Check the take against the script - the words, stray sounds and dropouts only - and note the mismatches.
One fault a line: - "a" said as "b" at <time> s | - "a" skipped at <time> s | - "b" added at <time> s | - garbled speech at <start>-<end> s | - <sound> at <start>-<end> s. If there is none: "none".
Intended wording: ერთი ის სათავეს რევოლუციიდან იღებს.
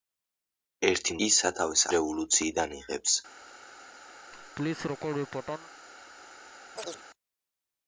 - laugh at 4.3-5.7 s
- chirp at 6.8-7.0 s